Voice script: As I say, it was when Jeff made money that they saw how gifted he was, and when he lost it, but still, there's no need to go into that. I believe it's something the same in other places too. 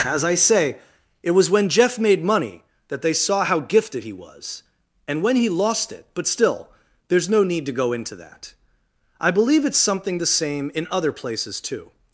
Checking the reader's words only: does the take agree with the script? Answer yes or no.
yes